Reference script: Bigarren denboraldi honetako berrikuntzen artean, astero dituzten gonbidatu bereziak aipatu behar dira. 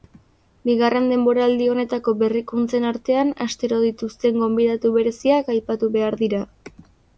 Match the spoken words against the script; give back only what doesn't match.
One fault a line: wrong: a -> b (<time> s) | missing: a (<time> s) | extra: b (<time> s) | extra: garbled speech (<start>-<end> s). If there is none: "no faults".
no faults